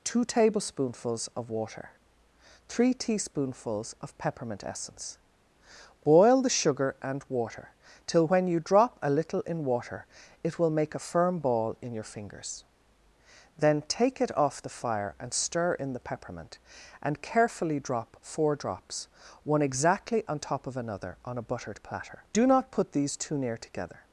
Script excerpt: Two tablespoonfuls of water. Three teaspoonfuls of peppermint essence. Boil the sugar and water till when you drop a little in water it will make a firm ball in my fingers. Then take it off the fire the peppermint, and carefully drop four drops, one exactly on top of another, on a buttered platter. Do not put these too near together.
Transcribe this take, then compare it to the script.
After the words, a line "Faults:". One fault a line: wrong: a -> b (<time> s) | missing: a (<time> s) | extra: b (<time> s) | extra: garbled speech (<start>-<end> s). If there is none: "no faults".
Two tablespoonfuls of water. Three teaspoonfuls of peppermint essence. Boil the sugar and water till when you drop a little in water it will make a firm ball in your fingers. Then take it off the fire and stir in the peppermint, and carefully drop four drops, one exactly on top of another, on a buttered platter. Do not put these too near together.
Faults:
wrong: my -> your (11.9 s)
extra: and stir in (15.2 s)